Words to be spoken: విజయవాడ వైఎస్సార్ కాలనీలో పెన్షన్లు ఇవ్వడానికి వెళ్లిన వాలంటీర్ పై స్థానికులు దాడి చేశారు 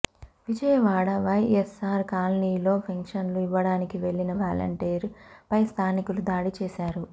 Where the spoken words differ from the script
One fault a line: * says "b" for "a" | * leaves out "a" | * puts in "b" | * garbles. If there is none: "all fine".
all fine